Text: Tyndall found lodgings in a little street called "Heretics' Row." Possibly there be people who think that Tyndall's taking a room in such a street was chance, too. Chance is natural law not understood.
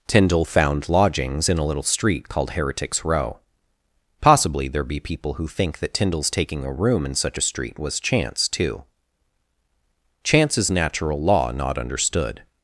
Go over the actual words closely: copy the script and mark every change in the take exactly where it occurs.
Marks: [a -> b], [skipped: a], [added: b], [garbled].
Tyndall found lodgings in a little street called "Heretics' Row." Possibly there be people who think that Tyndall's taking a room in such a street was chance, too. Chance is natural law not understood.